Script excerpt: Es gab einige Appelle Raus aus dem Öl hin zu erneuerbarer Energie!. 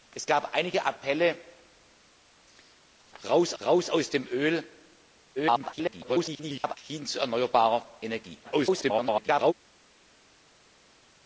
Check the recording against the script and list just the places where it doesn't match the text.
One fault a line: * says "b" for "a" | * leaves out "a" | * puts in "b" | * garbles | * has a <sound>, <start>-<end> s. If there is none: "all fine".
* puts in "Raus"
* garbles
* garbles